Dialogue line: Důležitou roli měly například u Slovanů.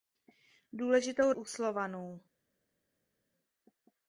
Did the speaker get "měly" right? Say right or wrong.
wrong